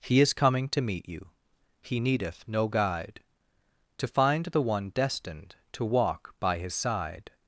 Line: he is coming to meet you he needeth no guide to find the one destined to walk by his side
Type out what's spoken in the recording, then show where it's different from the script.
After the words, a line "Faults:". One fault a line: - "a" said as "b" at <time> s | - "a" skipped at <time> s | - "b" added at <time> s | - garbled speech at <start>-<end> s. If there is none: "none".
he is coming to meet you he needeth no guide to find the one destined to walk by his side
Faults:
none